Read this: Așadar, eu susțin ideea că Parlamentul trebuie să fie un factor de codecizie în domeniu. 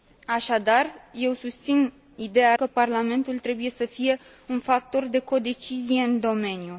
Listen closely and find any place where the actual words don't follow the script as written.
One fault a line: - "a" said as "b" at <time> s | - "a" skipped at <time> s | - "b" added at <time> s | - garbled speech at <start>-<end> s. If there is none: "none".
none